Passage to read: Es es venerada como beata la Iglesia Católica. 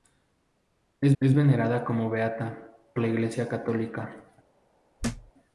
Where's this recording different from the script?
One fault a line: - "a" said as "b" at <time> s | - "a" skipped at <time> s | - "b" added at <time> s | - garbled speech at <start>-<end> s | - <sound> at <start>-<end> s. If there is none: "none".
- thud at 5.0-5.3 s